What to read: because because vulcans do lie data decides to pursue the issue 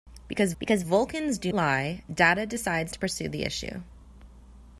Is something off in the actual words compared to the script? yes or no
no